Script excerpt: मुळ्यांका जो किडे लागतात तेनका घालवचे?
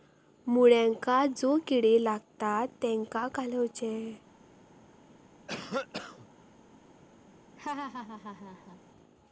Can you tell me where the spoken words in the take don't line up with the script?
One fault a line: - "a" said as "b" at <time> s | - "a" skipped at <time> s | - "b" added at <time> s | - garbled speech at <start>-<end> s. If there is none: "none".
none